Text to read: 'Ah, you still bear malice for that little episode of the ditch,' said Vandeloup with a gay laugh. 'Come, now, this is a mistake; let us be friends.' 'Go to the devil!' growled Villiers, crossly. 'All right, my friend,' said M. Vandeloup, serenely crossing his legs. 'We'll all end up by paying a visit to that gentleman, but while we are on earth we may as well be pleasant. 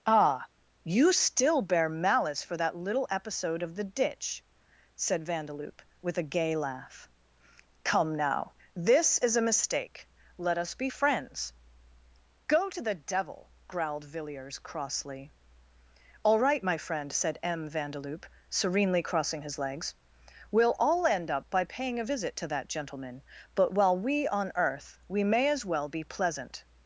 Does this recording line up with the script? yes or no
no